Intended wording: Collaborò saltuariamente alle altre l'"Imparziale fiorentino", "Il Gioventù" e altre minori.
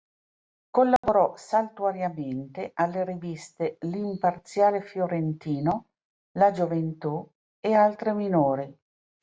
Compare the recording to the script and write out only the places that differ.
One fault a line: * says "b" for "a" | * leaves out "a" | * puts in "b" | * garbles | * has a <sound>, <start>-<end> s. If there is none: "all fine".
* has a dropout, 1.0-1.0 s
* says "riviste" for "altre"
* says "La" for "Il"